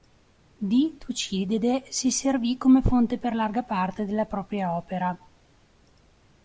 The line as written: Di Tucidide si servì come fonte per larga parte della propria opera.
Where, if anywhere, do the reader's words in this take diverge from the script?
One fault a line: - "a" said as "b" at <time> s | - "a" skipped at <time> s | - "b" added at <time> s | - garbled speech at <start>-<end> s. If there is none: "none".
none